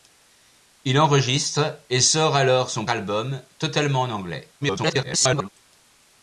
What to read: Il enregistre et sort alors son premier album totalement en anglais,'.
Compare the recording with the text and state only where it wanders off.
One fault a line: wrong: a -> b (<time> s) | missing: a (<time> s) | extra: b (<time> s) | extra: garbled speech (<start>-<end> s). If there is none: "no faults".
missing: premier (2.9 s)
extra: garbled speech (4.6-5.5 s)